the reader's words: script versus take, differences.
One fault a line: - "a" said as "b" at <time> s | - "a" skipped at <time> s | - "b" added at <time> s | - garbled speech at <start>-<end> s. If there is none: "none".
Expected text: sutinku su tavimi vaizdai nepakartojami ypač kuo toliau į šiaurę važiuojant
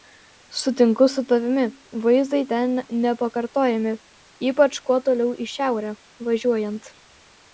- "ten" added at 2.5 s